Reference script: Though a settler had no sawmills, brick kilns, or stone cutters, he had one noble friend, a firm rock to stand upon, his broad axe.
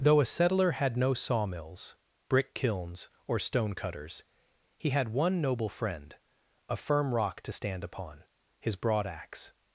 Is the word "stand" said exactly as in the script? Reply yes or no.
yes